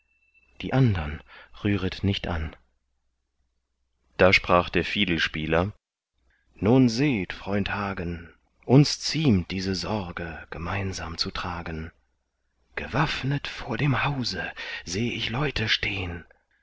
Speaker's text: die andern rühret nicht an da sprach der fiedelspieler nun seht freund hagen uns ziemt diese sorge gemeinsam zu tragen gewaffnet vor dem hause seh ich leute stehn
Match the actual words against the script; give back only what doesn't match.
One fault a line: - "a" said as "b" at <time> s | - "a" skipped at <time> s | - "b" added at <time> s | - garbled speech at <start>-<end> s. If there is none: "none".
none